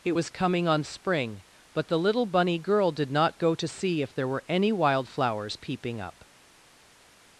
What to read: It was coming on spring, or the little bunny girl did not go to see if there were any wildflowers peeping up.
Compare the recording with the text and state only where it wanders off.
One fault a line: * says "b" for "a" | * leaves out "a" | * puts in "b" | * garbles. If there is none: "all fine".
* says "but" for "or"